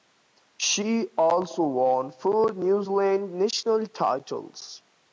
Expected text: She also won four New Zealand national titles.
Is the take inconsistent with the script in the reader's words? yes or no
no